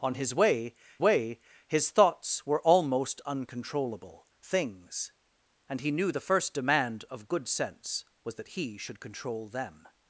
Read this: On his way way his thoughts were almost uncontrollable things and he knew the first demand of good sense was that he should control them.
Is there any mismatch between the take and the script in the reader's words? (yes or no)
no